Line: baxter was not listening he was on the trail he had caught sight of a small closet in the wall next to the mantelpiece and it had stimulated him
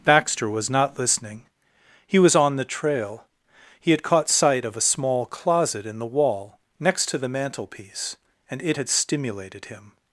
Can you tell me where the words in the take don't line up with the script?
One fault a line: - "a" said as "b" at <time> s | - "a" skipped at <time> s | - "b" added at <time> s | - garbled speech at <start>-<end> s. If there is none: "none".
none